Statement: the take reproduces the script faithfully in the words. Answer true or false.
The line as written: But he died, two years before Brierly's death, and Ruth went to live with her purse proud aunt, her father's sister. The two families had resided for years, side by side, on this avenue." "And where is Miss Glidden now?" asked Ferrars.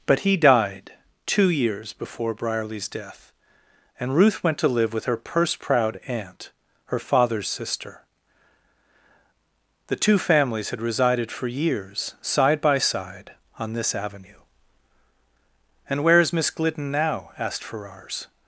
true